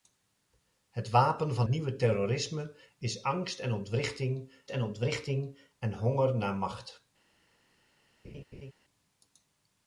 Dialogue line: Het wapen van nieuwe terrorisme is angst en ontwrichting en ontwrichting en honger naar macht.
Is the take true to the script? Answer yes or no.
yes